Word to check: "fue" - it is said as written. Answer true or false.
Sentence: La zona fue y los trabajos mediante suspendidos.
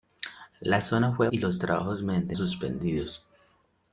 true